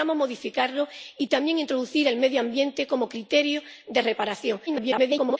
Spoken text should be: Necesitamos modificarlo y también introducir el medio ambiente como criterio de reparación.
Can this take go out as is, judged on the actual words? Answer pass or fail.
fail